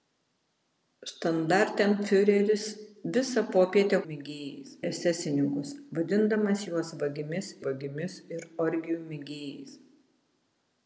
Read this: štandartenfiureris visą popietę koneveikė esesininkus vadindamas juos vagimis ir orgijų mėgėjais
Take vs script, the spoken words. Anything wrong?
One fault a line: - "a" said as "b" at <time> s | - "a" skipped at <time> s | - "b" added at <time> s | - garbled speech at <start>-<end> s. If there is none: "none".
- "koneveikė" said as "mėgėjais" at 4.1 s
- "vagimis" added at 7.7 s